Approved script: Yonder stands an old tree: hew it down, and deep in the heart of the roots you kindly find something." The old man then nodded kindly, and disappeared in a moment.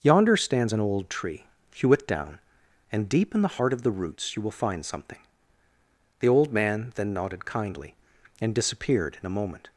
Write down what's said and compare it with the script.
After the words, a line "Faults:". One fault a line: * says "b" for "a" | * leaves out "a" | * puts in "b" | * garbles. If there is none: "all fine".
Yonder stands an old tree: hew it down, and deep in the heart of the roots you will find something." The old man then nodded kindly, and disappeared in a moment.
Faults:
* says "will" for "kindly"